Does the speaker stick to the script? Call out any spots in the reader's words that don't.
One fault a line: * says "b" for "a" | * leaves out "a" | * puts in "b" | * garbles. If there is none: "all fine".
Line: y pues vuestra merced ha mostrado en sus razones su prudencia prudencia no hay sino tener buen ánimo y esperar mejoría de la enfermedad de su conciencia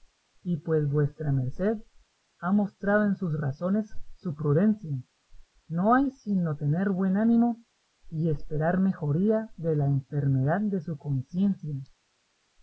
* leaves out "prudencia"